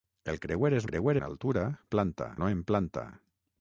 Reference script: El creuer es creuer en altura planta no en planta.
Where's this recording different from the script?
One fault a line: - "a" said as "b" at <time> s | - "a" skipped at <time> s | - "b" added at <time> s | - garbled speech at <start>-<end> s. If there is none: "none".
none